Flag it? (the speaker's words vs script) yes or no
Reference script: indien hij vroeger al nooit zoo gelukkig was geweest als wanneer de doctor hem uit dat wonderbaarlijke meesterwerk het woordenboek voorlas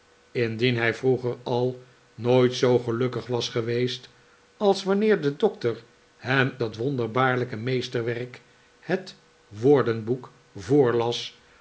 yes